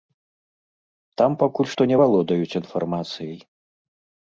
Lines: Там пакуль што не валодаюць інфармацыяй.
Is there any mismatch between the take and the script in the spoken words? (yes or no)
no